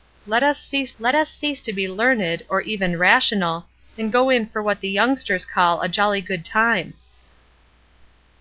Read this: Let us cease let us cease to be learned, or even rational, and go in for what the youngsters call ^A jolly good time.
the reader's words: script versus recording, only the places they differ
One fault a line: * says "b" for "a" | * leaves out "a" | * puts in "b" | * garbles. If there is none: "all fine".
all fine